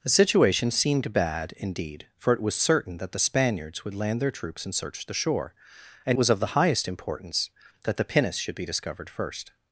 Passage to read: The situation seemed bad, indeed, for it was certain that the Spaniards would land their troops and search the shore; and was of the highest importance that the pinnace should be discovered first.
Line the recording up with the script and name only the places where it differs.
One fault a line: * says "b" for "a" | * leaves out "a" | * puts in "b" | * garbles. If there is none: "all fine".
all fine